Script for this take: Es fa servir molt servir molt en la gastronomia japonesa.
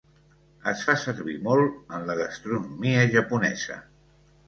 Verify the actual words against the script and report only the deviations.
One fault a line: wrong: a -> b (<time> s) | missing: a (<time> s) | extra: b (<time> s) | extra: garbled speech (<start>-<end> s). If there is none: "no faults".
missing: servir molt (1.9 s)